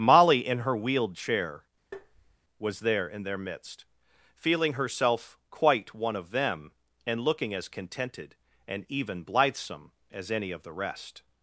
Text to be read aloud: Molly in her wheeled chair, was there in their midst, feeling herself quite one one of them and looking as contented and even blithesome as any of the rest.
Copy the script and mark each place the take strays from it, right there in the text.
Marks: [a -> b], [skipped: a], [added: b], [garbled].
Molly in her wheeled chair, was there in their midst, feeling herself quite one [skipped: one] of them and looking as contented and even blithesome as any of the rest.